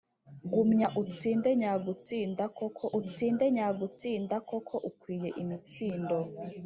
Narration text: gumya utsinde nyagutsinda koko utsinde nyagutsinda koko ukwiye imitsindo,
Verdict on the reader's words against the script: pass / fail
pass